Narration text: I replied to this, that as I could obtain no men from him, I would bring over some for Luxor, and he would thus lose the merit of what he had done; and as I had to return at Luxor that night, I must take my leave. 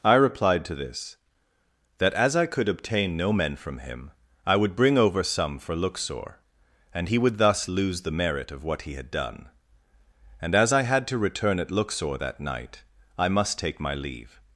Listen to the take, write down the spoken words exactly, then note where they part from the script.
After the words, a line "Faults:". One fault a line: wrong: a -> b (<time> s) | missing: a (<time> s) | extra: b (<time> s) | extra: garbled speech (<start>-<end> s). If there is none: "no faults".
I replied to this, that as I could obtain no men from him, I would bring over some for Luxor, and he would thus lose the merit of what he had done; and as I had to return at Luxor that night, I must take my leave.
Faults:
no faults